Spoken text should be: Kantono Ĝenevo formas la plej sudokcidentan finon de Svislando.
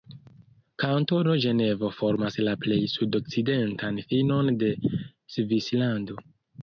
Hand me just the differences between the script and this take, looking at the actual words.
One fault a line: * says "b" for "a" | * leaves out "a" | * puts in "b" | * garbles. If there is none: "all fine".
all fine